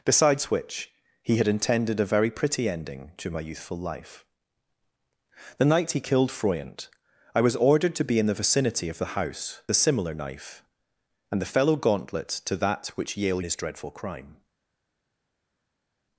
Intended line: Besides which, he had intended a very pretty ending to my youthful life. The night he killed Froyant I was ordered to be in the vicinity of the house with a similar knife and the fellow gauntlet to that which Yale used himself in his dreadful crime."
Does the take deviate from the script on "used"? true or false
true